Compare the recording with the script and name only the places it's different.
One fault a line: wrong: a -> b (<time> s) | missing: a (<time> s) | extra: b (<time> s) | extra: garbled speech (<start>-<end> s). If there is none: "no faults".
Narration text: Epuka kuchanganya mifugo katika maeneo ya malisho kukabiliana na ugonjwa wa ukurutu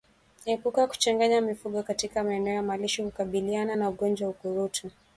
no faults